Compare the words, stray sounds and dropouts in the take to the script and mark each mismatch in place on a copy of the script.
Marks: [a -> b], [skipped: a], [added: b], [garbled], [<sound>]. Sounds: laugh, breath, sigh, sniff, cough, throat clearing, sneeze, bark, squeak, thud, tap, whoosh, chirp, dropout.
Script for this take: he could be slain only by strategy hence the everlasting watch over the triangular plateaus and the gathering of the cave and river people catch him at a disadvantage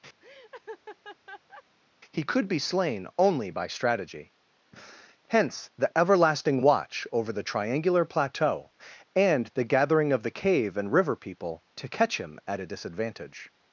[laugh] he could be slain only by strategy hence the everlasting watch over the triangular [plateaus -> plateau] and the gathering of the cave and river people [added: to] catch him at a disadvantage